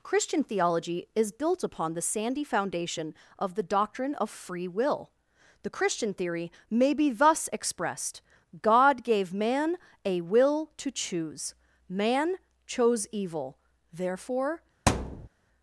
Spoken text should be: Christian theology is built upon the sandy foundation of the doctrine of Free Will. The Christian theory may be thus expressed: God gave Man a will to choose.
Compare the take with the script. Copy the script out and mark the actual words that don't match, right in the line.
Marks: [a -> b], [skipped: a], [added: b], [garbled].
Christian theology is built upon the sandy foundation of the doctrine of Free Will. The Christian theory may be thus expressed: God gave Man a will to choose. [added: Man chose evil therefore]